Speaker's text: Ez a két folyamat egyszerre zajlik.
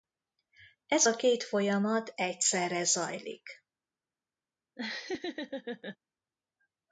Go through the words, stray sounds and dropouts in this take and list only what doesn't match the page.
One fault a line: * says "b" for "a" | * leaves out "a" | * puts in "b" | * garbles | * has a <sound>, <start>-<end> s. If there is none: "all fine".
* has a laugh, 4.8-6.0 s